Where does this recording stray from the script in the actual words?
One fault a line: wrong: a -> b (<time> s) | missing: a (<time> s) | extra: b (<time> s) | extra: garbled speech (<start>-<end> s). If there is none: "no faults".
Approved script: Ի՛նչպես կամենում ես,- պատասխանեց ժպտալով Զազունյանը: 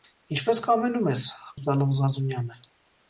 missing: պատասխանեց (1.3 s)